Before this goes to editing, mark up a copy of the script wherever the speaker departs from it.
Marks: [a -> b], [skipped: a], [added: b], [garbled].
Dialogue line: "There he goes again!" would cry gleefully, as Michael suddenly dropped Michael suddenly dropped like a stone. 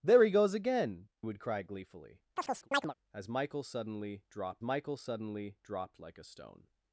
"There he goes again!" would cry gleefully, as Michael suddenly dropped Michael suddenly dropped like a stone.